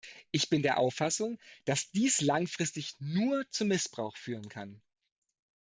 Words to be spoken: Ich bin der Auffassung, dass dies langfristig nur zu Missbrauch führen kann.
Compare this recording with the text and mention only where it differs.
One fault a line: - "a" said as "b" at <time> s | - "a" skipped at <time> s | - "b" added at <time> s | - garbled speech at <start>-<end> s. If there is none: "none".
none